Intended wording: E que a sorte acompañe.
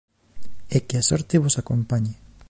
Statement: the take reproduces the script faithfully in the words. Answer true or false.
false